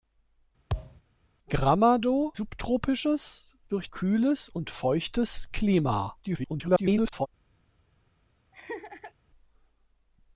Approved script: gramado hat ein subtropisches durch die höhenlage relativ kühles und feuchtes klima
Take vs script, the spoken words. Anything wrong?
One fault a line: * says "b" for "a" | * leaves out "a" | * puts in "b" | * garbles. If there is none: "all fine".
* leaves out "hat ein"
* leaves out "die höhenlage relativ"
* garbles